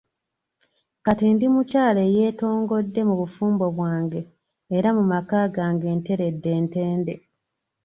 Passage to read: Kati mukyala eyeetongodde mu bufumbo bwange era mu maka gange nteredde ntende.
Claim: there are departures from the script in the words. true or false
true